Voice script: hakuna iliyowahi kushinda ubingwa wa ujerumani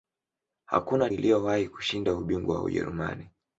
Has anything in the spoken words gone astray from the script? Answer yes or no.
no